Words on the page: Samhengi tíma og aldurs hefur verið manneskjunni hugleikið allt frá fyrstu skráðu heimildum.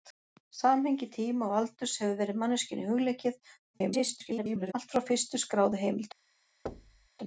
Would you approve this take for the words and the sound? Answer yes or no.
no